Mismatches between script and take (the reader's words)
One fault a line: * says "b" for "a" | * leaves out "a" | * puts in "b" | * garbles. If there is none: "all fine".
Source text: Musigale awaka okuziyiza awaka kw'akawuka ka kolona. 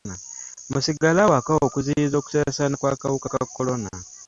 * says "okusaasaana" for "awaka"